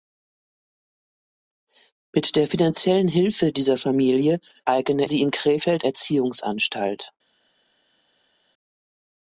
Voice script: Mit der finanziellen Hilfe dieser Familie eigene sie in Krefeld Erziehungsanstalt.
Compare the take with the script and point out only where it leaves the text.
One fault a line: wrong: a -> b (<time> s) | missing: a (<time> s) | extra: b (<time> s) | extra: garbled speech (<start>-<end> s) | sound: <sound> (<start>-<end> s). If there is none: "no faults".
no faults